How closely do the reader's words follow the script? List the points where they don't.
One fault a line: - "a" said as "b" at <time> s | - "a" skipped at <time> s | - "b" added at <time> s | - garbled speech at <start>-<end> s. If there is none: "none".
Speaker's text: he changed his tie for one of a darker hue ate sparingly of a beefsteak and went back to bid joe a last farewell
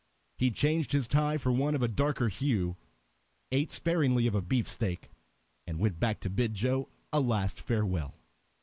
none